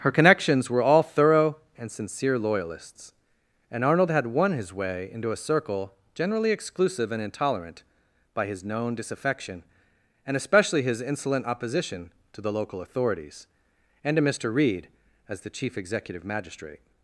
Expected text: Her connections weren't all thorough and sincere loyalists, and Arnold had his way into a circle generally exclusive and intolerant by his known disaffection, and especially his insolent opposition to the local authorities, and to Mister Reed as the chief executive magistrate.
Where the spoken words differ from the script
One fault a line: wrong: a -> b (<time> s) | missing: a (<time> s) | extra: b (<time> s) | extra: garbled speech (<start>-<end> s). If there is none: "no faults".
wrong: weren't -> were (0.7 s)
extra: won (4.2 s)